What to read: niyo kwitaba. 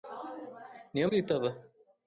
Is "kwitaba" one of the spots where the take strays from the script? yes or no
no